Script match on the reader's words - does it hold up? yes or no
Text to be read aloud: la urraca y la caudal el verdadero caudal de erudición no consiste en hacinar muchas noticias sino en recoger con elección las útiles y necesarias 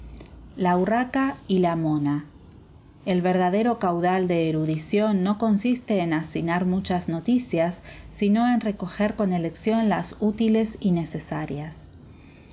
no